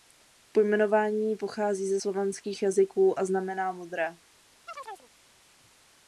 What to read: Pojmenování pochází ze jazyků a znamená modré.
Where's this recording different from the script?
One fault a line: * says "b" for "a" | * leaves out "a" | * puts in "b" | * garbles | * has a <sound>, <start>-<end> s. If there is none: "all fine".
* puts in "slovanských"
* has a chirp, 4.7-5.1 s